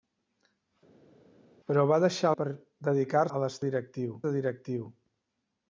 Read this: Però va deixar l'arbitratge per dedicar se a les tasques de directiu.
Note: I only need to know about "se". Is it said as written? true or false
false